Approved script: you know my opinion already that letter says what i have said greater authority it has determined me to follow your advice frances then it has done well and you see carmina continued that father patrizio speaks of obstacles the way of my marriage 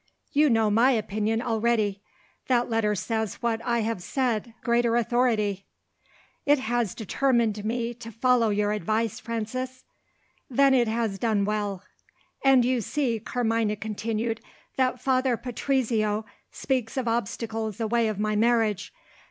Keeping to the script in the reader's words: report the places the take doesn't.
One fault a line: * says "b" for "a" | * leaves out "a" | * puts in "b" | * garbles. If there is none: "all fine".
all fine